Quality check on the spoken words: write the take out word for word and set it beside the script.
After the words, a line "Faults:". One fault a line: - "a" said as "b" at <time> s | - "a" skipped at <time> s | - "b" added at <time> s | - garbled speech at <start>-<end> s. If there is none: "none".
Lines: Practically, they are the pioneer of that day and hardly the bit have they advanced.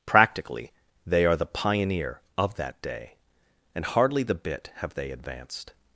Practically, they are the pioneer of that day and hardly the bit have they advanced.
Faults:
none